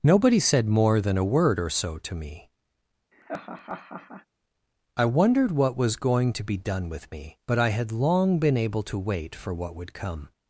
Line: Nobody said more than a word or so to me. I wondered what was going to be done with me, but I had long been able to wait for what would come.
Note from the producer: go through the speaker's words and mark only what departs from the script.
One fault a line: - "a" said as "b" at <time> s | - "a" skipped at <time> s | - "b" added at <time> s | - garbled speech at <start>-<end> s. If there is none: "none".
none